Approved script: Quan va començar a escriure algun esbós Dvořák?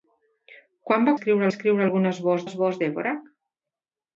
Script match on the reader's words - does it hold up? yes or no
no